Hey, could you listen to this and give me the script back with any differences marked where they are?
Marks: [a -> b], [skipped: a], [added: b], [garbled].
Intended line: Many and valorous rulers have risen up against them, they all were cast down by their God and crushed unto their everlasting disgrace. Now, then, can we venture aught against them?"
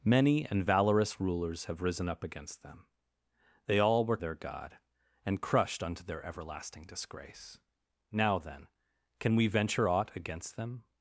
Many and valorous rulers have risen up against them, they all were [skipped: cast down by] their God and crushed unto their everlasting disgrace. Now, then, can we venture aught against them?"